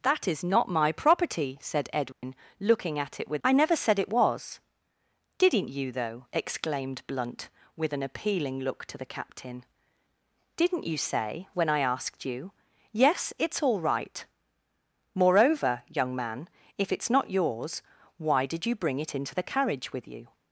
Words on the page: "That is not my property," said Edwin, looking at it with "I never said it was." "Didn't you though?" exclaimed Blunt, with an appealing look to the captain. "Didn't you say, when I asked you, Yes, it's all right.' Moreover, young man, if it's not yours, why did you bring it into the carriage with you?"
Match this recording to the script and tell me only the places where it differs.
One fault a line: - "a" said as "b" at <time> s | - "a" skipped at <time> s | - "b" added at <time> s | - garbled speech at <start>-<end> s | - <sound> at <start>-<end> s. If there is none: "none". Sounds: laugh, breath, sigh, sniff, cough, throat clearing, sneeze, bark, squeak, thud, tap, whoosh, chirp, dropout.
- dropout at 2.1-2.2 s